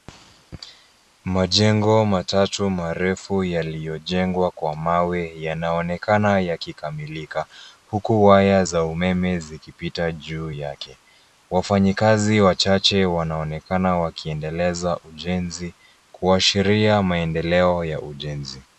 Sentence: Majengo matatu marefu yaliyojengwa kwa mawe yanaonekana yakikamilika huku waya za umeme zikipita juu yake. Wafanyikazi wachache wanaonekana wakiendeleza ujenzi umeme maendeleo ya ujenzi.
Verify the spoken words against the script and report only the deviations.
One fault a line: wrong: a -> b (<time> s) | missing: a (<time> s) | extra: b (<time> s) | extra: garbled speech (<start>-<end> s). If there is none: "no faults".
wrong: umeme -> kuashiria (16.1 s)